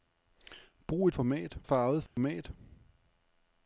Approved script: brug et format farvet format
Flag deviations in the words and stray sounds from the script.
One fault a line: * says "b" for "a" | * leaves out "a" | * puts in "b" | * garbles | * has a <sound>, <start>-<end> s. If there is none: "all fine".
* has a dropout, 2.1-2.2 s